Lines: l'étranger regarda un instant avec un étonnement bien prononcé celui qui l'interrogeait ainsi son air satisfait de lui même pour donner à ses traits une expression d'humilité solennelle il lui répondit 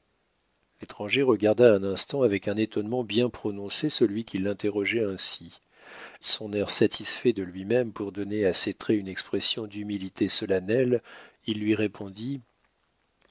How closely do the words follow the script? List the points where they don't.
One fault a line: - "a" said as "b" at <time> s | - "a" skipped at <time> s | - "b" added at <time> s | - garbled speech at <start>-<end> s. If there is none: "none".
none